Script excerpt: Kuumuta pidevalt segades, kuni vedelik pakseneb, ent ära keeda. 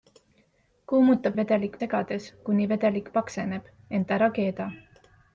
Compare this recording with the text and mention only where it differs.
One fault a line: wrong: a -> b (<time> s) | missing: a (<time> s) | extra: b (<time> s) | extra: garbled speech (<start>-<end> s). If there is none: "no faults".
wrong: pidevalt -> vedelik (1.4 s)